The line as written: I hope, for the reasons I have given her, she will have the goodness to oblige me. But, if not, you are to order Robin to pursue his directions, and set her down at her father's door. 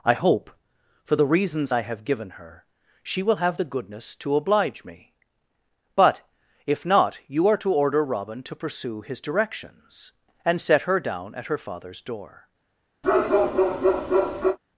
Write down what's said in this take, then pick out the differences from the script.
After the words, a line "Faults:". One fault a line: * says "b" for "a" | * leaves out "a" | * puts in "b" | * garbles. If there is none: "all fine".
I hope, for the reasons I have given her, she will have the goodness to oblige me. But, if not, you are to order Robin to pursue his directions, and set her down at her father's door.
Faults:
all fine